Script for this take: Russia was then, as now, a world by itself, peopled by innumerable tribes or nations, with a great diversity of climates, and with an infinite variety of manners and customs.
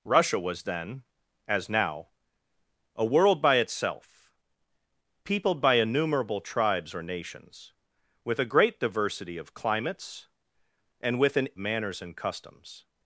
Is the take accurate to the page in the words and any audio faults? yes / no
no